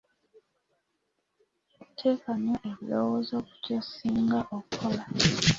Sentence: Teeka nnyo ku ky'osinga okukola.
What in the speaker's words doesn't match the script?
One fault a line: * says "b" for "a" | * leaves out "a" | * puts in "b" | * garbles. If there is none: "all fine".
* puts in "ebirowoozo"